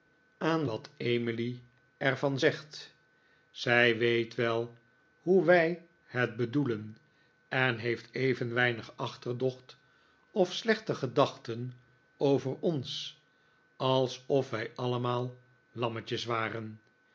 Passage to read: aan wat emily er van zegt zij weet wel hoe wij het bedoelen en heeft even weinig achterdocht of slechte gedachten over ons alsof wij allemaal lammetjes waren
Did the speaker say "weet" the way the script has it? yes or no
yes